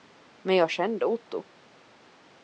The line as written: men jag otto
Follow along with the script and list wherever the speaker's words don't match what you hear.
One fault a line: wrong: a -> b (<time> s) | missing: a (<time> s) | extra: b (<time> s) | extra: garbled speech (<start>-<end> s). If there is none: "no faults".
extra: kände (0.7 s)